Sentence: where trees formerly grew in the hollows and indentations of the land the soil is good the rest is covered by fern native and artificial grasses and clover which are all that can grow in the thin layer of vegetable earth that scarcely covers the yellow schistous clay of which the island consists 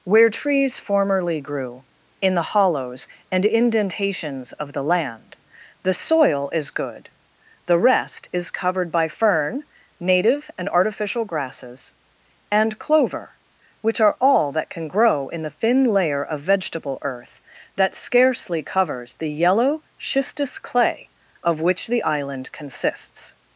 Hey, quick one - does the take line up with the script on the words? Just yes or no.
yes